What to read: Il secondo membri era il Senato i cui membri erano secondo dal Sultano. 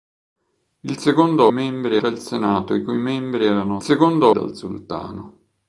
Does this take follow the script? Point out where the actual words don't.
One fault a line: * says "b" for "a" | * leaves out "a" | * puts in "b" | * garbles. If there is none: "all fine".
all fine